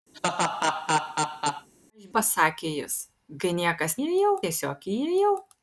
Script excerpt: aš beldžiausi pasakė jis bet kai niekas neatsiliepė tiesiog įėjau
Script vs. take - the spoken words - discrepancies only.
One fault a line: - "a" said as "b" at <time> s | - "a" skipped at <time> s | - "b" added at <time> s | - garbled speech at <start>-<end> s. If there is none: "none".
- "beldžiausi" skipped at 2.0 s
- "bet" skipped at 3.0 s
- "neatsiliepė" said as "įėjau" at 4.0 s